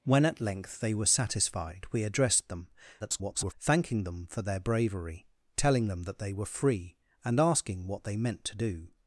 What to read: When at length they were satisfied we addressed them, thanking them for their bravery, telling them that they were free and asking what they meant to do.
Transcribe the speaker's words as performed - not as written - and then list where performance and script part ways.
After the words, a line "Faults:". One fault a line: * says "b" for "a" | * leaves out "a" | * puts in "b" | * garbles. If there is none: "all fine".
When at length they were satisfied we addressed them, [garbled] thanking them for their bravery, telling them that they were free and asking what they meant to do.
Faults:
* garbles